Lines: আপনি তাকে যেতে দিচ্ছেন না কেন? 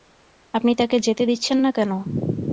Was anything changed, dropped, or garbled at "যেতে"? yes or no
no